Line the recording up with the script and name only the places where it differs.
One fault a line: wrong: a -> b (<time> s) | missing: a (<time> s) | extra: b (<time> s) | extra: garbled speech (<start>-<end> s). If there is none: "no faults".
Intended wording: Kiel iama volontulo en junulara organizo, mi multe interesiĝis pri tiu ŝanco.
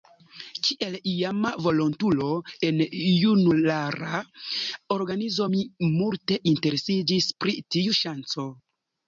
no faults